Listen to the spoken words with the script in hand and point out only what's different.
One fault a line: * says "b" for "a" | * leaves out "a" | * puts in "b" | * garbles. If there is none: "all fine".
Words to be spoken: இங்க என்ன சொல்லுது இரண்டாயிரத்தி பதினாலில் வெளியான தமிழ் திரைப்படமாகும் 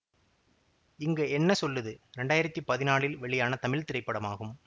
all fine